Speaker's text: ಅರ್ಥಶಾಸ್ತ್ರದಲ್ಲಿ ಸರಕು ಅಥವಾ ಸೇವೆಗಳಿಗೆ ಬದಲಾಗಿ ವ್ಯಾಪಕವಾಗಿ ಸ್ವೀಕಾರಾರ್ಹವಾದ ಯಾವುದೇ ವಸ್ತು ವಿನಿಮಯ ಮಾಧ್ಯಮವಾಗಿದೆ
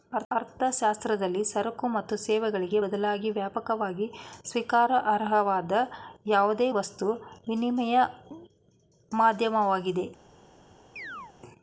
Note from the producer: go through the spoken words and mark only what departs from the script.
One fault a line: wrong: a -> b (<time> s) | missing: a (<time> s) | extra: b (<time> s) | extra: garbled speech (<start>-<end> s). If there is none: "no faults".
wrong: ಅಥವಾ -> ಮತ್ತು (1.9 s)